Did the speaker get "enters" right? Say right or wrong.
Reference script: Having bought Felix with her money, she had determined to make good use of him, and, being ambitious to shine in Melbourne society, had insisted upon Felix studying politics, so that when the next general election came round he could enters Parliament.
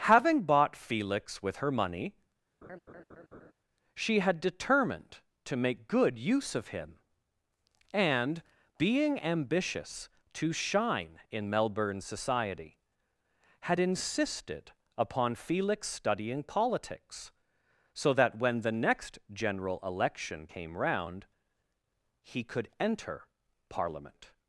wrong